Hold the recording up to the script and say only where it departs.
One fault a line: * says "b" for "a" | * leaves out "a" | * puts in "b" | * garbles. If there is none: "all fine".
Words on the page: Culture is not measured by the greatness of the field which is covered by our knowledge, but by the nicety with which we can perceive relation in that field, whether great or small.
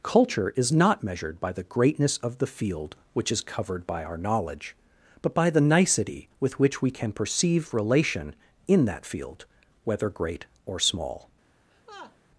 all fine